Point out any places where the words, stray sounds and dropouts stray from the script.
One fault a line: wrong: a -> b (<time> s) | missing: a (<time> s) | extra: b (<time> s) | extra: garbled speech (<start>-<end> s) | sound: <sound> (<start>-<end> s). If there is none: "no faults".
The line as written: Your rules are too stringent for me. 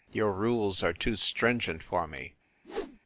sound: whoosh (2.6-3.0 s)